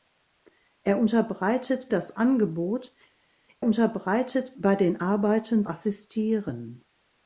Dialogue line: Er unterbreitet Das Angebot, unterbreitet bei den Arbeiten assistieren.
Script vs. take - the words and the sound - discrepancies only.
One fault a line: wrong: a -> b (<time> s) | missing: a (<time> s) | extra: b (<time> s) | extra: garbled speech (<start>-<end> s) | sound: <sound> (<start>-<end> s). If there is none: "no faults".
no faults